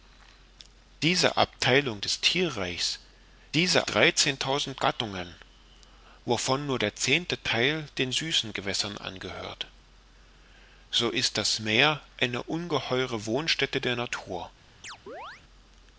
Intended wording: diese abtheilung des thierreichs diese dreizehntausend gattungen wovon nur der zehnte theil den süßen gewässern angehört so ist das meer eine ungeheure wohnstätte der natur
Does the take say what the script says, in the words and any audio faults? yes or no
no